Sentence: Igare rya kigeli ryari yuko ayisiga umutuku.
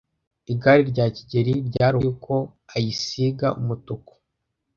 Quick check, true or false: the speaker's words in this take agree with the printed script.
true